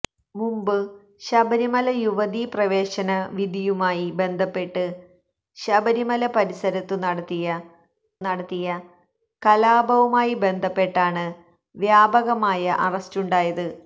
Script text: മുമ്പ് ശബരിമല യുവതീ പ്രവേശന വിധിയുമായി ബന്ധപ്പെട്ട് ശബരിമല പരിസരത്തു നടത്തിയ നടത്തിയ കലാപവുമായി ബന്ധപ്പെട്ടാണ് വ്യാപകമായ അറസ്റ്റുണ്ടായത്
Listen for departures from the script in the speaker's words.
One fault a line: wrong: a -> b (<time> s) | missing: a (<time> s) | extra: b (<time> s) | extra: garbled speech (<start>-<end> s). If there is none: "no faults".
no faults